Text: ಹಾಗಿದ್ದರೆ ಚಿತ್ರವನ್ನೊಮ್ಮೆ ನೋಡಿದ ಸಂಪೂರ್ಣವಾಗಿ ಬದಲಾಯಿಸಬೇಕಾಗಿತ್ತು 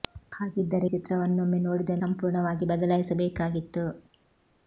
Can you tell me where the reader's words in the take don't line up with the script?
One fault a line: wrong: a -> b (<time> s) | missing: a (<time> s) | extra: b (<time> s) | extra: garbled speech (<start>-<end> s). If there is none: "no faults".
no faults